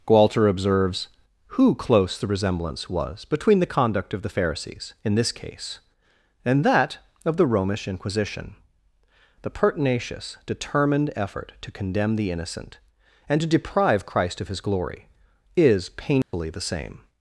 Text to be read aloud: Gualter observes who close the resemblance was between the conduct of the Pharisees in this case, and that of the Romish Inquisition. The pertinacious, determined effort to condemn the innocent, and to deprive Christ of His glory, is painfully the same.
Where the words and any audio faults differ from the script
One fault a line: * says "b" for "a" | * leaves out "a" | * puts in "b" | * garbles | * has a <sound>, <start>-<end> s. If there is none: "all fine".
* has a dropout, 16.2-16.3 s